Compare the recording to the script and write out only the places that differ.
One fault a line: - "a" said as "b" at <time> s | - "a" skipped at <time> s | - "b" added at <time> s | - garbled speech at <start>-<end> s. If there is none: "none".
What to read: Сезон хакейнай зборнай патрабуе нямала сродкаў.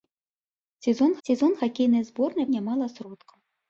- "сезон" added at 1.3 s
- "патрабуе" skipped at 2.5 s